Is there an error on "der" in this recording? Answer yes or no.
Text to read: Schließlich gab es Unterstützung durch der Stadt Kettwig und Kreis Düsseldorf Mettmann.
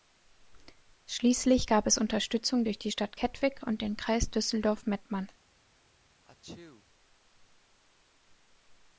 yes